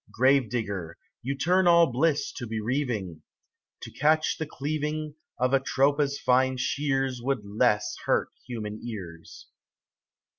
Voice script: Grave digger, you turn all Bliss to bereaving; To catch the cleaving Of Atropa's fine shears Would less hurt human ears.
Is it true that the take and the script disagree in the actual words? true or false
false